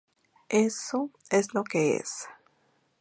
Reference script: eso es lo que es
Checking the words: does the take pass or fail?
pass